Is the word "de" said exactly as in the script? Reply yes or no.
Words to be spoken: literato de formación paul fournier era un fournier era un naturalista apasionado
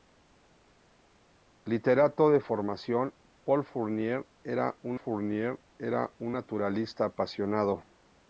yes